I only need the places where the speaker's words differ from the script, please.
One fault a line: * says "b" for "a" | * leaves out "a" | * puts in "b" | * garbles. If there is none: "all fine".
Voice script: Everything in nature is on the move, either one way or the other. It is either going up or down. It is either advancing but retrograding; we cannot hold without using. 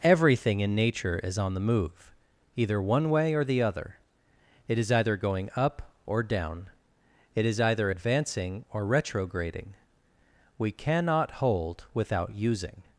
* says "or" for "but"